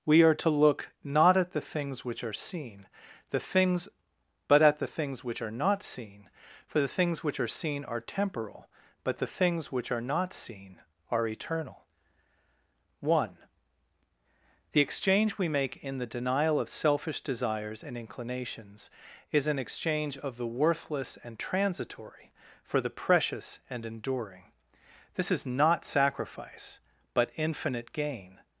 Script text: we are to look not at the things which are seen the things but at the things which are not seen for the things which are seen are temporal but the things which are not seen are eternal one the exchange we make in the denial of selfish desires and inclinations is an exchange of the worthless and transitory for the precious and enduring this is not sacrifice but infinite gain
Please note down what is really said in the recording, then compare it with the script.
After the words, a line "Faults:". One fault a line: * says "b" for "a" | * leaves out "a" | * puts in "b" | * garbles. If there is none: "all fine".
we are to look not at the things which are seen the things but at the things which are not seen for the things which are seen are temporal but the things which are not seen are eternal one the exchange we make in the denial of selfish desires and inclinations is an exchange of the worthless and transitory for the precious and enduring this is not sacrifice but infinite gain
Faults:
all fine